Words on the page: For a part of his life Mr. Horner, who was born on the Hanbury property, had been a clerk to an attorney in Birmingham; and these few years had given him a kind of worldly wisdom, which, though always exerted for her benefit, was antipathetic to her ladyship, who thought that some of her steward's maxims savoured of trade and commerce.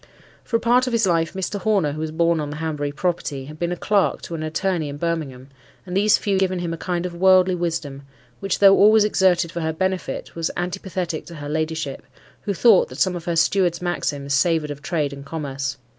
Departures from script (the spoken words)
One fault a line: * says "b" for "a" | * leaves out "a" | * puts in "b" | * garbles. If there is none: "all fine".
* leaves out "years had"